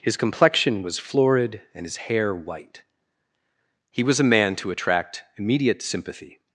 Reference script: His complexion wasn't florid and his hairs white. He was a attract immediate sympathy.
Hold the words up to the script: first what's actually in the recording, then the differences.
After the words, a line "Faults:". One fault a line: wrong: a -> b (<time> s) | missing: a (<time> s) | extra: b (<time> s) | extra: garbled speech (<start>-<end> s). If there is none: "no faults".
His complexion was florid and his hair white. He was a man to attract immediate sympathy.
Faults:
wrong: wasn't -> was (0.8 s)
wrong: hairs -> hair (2.1 s)
extra: man to (4.3 s)